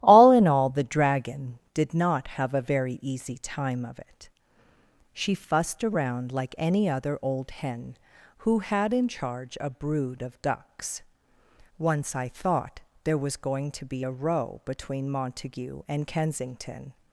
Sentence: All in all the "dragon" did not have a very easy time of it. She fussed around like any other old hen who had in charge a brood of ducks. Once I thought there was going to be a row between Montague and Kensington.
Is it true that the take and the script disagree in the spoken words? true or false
false